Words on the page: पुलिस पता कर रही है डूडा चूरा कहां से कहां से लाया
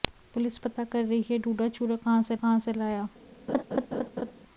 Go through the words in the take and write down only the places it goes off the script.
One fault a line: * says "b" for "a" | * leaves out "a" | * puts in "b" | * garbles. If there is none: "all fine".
all fine